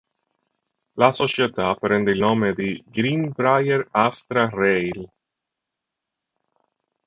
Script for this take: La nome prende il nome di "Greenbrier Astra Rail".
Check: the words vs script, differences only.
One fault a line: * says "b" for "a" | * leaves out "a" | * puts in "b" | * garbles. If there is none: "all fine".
* says "società" for "nome"